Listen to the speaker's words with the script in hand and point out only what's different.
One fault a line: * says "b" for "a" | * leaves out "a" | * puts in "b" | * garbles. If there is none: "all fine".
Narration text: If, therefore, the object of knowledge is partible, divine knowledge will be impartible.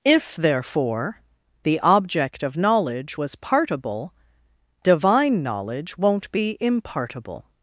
* says "was" for "is"
* says "won't" for "will"